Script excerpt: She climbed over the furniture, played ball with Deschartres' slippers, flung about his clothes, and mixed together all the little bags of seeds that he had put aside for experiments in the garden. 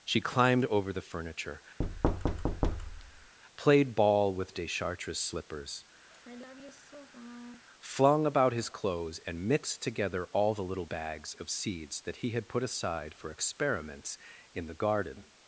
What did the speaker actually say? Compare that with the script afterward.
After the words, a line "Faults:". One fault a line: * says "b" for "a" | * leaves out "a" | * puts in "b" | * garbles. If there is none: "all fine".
She climbed over the furniture, played ball with Deschartres' slippers, flung about his clothes, and mixed together all the little bags of seeds that he had put aside for experiments in the garden.
Faults:
all fine